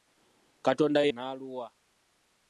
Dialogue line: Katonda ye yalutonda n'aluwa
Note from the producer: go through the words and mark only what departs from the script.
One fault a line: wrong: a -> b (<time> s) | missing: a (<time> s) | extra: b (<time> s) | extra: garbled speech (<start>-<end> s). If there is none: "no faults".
missing: yalutonda (1.1 s)